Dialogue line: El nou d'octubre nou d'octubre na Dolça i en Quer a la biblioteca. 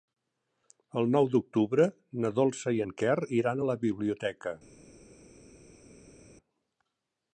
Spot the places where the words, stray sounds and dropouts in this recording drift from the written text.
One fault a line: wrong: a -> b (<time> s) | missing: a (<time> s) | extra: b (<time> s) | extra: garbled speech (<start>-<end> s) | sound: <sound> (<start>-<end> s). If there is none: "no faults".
missing: nou d'octubre (1.9 s)
extra: iran (3.4 s)